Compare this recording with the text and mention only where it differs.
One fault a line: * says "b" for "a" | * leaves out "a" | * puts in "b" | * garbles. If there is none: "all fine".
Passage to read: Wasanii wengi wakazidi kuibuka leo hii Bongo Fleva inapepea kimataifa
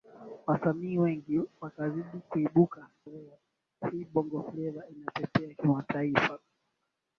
all fine